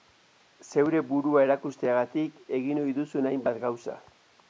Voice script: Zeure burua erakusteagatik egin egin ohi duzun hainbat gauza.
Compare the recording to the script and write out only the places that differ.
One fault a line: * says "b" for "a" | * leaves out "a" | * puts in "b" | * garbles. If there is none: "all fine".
* leaves out "egin"